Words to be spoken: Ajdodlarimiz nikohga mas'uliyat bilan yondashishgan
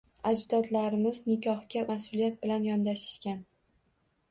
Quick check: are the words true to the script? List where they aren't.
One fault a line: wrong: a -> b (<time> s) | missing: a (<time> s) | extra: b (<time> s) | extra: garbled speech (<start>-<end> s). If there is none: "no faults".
no faults